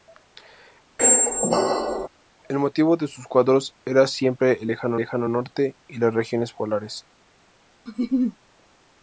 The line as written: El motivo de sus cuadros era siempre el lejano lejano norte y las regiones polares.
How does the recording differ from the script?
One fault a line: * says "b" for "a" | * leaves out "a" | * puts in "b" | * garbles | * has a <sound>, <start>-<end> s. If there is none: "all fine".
* has a squeak, 1.0-2.1 s
* has a laugh, 7.9-8.4 s